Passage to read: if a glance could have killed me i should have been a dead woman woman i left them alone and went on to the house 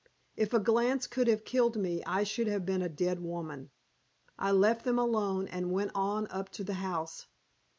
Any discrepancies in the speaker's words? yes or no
yes